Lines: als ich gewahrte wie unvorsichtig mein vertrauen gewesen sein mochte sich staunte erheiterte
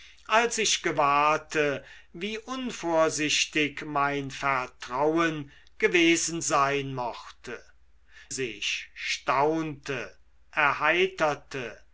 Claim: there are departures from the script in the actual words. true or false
false